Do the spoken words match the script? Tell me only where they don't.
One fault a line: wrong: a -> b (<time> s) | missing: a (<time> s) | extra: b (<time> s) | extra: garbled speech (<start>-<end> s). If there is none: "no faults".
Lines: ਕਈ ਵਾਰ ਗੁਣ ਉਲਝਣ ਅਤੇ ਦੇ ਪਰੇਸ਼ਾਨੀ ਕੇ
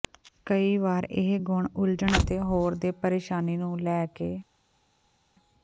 extra: ਇਹ (1.1 s)
extra: ਹੋਰ (2.4 s)
extra: ਨੂੰ ਲੈ (3.6 s)